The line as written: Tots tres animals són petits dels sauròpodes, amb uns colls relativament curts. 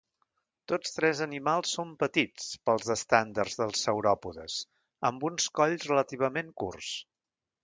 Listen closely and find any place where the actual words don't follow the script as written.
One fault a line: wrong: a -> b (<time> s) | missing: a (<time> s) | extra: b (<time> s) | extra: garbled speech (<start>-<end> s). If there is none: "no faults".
extra: pels estàndards (2.7 s)